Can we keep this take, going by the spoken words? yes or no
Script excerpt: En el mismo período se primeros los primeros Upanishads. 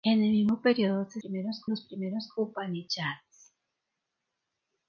yes